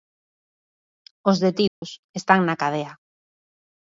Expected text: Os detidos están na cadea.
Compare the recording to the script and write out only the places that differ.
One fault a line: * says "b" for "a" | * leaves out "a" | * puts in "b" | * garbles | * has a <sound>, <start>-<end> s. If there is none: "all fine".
* has a dropout, 1.7-1.8 s